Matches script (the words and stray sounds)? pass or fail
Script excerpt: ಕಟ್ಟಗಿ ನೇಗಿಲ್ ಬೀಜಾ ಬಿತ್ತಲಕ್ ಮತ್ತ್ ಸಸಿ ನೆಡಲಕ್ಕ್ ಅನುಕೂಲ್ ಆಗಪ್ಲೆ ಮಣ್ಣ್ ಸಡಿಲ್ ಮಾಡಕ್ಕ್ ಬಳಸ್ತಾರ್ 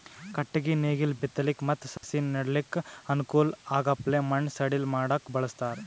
fail